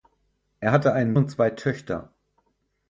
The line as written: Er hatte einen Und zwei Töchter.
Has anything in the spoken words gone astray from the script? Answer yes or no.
no